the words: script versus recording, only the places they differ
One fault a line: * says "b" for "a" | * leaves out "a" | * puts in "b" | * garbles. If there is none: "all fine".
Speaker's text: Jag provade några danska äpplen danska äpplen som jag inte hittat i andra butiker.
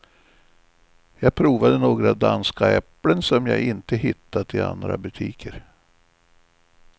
* leaves out "danska äpplen"